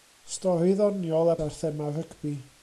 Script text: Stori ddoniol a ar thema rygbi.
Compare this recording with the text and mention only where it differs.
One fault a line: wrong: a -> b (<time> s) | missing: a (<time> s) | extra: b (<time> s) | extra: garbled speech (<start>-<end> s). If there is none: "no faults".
no faults